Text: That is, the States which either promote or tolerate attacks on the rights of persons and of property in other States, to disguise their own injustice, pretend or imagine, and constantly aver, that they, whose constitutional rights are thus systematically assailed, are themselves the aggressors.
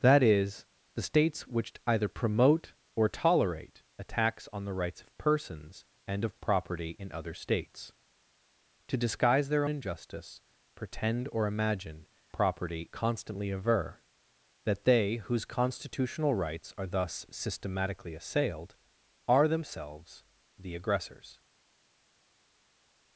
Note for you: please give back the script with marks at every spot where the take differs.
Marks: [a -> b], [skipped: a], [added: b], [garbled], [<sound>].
That is, the States which either promote or tolerate attacks on the rights of persons and of property in other States, to disguise their [skipped: own] injustice, pretend or imagine, [and -> property] constantly aver, that they, whose constitutional rights are thus systematically assailed, are themselves the aggressors.